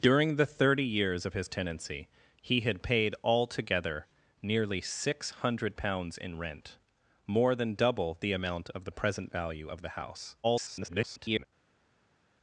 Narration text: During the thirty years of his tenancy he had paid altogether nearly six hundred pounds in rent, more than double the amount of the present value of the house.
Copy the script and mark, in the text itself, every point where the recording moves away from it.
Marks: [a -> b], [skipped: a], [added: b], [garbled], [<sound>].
During the thirty years of his tenancy he had paid altogether nearly six hundred pounds in rent, more than double the amount of the present value of the house. [garbled]